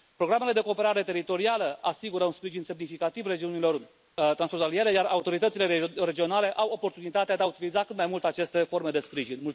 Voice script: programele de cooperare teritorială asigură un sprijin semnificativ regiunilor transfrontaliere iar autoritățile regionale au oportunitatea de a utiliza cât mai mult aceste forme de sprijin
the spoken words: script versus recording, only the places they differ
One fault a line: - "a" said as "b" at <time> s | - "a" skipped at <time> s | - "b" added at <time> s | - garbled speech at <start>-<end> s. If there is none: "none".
none